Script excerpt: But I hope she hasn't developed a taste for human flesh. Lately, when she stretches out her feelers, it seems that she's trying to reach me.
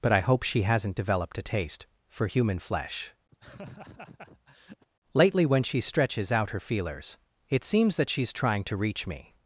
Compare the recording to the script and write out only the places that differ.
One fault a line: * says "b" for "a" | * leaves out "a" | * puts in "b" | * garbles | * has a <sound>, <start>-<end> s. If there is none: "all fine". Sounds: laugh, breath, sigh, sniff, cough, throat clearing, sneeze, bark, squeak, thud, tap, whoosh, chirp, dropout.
* has a laugh, 3.3-4.9 s